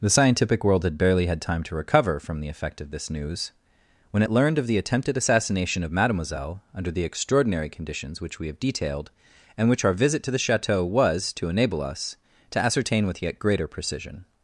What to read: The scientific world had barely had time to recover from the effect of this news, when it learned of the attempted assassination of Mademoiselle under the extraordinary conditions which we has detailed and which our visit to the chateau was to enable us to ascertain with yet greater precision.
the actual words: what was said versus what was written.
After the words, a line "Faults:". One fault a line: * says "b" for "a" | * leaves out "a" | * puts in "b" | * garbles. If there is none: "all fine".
The scientific world had barely had time to recover from the effect of this news, when it learned of the attempted assassination of Mademoiselle under the extraordinary conditions which we have detailed and which our visit to the chateau was to enable us to ascertain with yet greater precision.
Faults:
* says "have" for "has"